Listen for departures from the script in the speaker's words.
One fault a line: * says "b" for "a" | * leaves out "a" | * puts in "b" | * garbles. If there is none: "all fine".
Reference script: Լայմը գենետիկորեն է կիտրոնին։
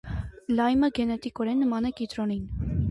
* puts in "նման"